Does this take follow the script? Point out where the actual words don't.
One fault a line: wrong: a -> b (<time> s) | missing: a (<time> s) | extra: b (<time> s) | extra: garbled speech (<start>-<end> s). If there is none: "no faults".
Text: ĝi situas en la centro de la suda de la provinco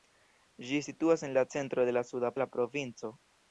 no faults